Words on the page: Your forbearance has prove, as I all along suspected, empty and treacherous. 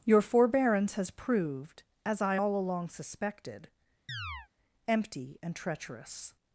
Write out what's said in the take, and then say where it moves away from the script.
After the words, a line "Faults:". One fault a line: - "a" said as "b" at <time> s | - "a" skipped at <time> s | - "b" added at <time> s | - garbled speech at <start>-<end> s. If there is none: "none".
Your forbearance has proved, as I all along suspected, empty and treacherous.
Faults:
- "prove" said as "proved" at 1.1 s